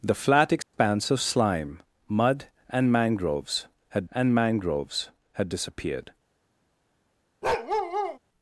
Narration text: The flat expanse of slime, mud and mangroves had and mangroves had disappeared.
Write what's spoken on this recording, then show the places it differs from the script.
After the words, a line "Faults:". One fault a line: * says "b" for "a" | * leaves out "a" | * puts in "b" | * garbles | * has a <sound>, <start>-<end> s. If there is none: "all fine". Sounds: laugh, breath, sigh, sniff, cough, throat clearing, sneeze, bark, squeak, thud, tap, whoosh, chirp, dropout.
The flat expanse of slime, mud and mangroves had and mangroves had disappeared.
Faults:
* has a dropout, 0.6-0.7 s
* has a bark, 7.4-8.2 s